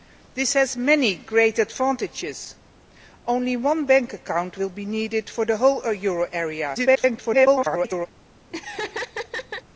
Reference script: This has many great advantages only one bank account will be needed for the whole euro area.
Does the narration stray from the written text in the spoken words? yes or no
yes